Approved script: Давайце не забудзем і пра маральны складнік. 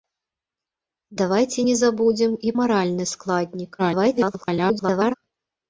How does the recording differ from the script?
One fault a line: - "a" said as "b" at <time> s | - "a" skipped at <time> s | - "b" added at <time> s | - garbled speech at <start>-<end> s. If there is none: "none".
- "пра" skipped at 2.5 s
- garbled speech at 3.8-5.1 s